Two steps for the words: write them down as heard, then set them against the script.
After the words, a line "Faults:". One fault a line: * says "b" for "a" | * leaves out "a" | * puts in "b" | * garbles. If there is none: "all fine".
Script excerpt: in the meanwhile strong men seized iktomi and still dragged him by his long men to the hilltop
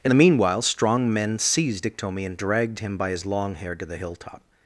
in the meanwhile strong men seized iktomi and dragged him by his long hair to the hilltop
Faults:
* leaves out "still"
* says "hair" for "men"